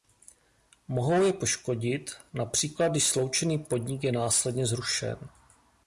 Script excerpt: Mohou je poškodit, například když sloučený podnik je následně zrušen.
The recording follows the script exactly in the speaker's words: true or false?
true